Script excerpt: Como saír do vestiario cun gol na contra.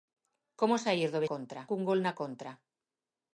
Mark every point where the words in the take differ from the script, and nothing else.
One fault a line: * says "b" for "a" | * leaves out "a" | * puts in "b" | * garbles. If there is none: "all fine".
* says "contra" for "vestiario"